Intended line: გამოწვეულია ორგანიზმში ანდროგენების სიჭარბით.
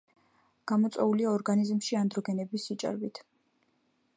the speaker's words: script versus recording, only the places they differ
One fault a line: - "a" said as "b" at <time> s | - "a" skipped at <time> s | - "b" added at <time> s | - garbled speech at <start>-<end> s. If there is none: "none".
none